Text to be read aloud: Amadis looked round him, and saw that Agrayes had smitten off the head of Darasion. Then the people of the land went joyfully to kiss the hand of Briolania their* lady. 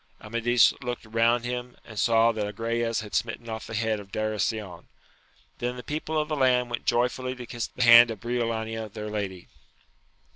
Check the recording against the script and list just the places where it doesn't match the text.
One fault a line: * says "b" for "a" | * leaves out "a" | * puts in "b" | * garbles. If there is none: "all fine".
all fine